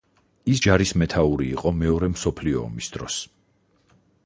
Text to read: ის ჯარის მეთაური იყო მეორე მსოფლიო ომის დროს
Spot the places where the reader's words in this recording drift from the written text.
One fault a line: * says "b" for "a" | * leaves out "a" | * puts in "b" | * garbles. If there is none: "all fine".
all fine